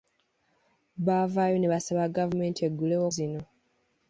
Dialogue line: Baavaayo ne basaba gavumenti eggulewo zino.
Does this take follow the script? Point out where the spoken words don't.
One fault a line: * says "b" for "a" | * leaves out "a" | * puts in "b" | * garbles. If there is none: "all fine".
all fine